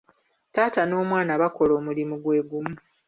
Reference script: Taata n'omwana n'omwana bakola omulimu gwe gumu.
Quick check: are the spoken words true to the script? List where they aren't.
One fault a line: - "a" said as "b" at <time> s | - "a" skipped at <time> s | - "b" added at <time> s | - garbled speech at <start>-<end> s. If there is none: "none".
- "n'omwana" skipped at 1.3 s